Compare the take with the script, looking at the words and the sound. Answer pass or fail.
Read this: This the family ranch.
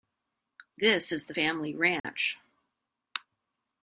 fail